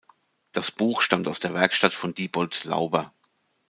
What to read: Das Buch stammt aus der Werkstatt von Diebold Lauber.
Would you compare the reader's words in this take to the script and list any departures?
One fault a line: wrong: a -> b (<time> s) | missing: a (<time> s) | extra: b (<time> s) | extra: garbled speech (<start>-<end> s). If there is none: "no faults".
no faults